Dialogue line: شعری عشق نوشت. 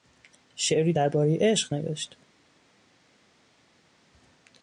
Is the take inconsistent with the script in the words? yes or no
yes